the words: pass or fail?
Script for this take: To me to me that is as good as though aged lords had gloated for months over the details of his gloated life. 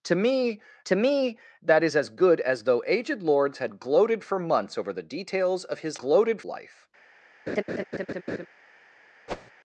pass